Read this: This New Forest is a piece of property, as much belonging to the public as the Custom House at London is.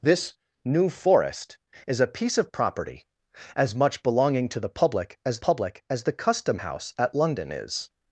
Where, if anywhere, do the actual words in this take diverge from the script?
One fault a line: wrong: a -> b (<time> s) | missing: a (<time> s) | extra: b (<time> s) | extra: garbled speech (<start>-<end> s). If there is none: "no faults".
extra: public as (5.4 s)